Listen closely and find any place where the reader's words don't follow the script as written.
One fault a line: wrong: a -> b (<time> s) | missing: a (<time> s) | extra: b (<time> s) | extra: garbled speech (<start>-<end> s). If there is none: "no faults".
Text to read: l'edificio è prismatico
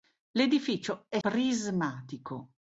no faults